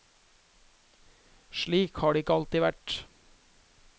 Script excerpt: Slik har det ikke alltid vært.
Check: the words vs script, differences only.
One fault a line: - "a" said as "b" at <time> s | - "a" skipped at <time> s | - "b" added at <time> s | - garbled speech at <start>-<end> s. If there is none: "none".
none